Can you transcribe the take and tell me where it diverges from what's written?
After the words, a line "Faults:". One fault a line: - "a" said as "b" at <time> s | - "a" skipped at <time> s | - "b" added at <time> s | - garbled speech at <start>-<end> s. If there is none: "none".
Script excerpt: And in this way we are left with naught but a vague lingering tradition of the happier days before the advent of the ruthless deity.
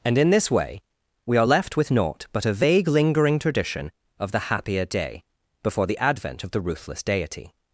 And in this way we are left with naught but a vague lingering tradition of the happier day before the advent of the ruthless deity.
Faults:
- "days" said as "day" at 4.9 s